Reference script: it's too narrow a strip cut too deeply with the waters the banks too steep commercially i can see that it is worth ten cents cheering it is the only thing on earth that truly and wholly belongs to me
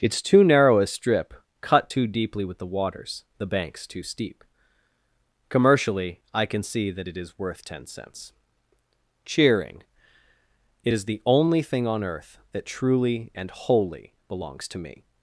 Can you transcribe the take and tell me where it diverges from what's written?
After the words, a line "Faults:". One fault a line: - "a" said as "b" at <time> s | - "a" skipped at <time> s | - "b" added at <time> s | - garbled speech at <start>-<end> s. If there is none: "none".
it's too narrow a strip cut too deeply with the waters the banks too steep commercially i can see that it is worth ten cents cheering it is the only thing on earth that truly and wholly belongs to me
Faults:
none